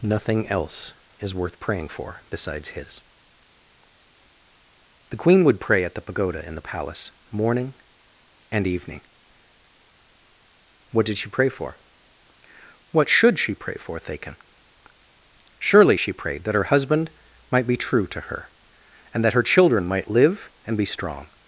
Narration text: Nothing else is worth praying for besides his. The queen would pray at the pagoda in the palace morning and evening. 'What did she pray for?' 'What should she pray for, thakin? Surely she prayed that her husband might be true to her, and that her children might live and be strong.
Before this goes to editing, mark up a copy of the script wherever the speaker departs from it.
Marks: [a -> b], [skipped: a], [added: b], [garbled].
Nothing else is worth praying for besides his. The queen would pray at the pagoda in the palace morning and evening. 'What did she pray for?' 'What should she pray for, thakin? Surely she prayed that her husband might be true to her, and that her children might live and be strong.